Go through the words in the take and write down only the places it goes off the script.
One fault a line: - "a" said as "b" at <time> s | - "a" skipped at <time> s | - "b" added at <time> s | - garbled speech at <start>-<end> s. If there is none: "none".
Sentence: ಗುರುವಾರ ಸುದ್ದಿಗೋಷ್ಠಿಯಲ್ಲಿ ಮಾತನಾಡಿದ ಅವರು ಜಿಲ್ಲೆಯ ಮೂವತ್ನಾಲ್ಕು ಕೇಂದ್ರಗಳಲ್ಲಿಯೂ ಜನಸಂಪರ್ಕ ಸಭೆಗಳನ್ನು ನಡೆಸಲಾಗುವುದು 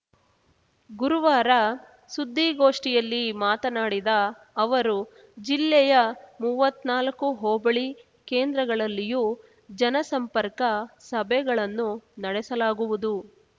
- "ಹೋಬಳಿ" added at 7.4 s